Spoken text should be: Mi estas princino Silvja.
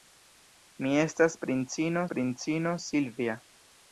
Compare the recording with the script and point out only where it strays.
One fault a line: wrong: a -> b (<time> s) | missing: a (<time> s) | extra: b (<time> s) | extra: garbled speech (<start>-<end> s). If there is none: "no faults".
extra: princino (2.1 s)